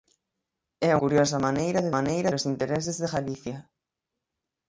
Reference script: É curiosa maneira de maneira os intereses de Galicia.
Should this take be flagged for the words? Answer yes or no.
no